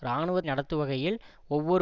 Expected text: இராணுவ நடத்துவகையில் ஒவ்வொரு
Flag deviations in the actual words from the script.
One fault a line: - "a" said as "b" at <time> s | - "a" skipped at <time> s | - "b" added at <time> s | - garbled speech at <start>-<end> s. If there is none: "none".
none